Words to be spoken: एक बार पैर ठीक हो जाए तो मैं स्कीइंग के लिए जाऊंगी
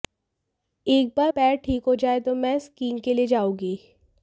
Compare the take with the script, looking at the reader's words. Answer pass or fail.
pass